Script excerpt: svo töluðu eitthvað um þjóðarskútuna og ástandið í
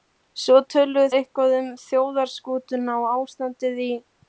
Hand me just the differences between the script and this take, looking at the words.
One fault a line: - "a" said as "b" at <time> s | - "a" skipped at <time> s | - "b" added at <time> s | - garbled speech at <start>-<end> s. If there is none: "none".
none